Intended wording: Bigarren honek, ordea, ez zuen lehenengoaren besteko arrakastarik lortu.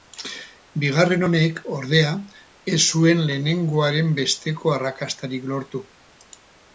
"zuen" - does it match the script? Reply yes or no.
yes